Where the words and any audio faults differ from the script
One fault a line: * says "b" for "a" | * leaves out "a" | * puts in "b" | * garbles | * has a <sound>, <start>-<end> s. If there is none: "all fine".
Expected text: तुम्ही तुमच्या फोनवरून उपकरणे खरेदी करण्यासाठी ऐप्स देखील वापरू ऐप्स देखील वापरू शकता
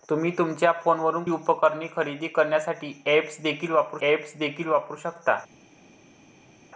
all fine